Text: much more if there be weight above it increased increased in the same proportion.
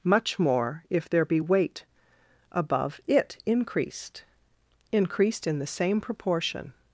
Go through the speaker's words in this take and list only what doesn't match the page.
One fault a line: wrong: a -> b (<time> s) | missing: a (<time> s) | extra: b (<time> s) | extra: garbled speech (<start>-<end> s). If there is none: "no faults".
no faults